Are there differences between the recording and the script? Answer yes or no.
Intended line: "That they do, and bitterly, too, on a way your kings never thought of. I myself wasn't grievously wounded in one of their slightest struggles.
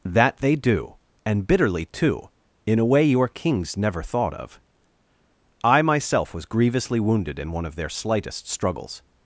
yes